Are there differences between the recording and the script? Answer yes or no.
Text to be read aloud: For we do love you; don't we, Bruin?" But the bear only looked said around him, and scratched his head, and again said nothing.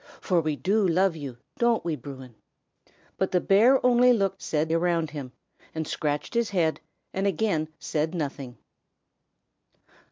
no